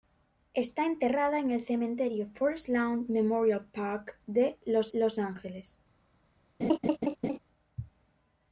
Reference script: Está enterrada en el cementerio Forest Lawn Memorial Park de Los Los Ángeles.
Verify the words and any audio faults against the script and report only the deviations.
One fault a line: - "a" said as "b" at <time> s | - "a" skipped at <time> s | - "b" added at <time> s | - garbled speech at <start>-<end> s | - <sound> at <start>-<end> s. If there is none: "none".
- laugh at 6.6-7.4 s